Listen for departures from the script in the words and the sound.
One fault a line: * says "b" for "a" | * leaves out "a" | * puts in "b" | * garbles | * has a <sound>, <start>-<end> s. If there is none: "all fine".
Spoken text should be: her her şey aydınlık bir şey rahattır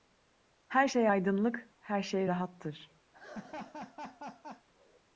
* leaves out "her"
* says "her" for "bir"
* has a laugh, 3.1-4.7 s